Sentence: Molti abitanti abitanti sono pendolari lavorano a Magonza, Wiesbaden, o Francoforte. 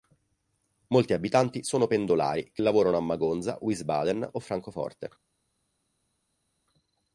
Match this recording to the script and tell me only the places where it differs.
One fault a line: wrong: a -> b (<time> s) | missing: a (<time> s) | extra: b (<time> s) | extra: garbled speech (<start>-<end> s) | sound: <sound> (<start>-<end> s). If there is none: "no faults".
missing: abitanti (1.6 s)
extra: che (2.5 s)